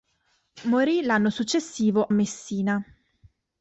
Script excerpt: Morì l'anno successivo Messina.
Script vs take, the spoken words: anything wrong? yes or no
no